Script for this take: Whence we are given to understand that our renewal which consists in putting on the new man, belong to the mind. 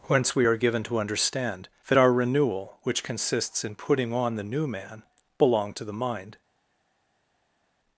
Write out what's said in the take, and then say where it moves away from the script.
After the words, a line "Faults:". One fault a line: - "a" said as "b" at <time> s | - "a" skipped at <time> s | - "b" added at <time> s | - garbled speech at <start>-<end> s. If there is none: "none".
Whence we are given to understand that our renewal which consists in putting on the new man, belong to the mind.
Faults:
none